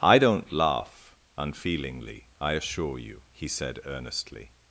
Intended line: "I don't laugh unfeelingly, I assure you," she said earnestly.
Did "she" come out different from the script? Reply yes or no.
yes